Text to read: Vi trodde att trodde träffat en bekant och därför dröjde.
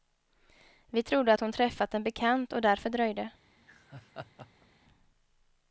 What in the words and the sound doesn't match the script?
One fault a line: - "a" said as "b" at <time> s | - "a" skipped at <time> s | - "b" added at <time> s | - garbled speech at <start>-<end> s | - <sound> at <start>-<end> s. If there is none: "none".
- "trodde" said as "hon" at 1.4 s
- laugh at 3.6-4.7 s